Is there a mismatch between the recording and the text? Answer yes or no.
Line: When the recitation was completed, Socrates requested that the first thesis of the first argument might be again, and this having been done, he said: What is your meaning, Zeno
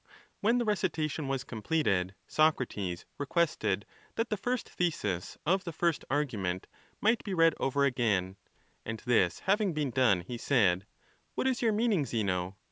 yes